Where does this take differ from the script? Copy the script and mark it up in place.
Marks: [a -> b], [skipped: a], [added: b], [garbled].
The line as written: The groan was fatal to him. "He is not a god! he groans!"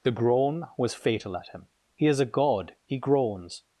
The groan was fatal [to -> at] him. "He is [skipped: not] a god! he groans!"